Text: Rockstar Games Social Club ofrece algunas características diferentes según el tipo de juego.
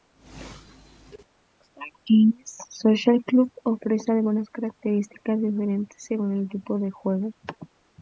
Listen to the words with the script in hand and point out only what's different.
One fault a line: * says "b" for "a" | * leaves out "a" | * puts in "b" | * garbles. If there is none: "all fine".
all fine